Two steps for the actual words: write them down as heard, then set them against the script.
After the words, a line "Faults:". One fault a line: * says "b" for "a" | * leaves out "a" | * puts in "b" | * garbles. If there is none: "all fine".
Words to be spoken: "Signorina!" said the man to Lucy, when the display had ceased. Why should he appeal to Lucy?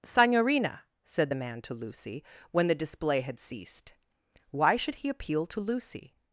"Signorina!" said the man to Lucy, when the display had ceased. Why should he appeal to Lucy?
Faults:
all fine